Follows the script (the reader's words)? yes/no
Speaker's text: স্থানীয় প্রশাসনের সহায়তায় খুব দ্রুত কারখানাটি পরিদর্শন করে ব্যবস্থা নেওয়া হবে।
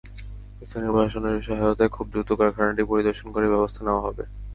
yes